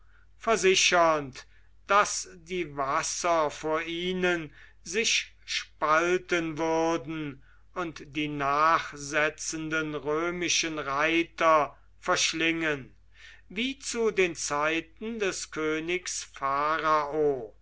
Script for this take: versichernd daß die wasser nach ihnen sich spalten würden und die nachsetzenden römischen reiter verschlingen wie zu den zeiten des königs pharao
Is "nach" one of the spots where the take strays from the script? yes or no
yes